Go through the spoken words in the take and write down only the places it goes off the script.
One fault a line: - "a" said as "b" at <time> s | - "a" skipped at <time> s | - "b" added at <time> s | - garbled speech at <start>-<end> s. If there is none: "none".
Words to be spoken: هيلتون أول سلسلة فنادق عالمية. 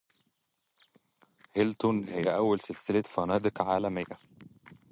- "هي" added at 2.0 s